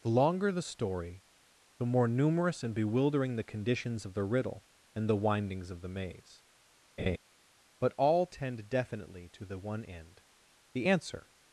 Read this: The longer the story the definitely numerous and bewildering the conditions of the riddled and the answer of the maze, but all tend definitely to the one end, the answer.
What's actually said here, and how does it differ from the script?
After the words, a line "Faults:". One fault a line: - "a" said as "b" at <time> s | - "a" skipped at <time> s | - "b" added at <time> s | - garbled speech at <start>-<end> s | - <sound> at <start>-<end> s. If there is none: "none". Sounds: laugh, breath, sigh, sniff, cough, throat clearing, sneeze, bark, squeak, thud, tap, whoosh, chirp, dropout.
The longer the story the more numerous and bewildering the conditions of the riddle and the windings of the maze, but all tend definitely to the one end, the answer.
Faults:
- "definitely" said as "more" at 1.9 s
- "riddled" said as "riddle" at 4.2 s
- "answer" said as "windings" at 5.2 s
- laugh at 7.0-7.2 s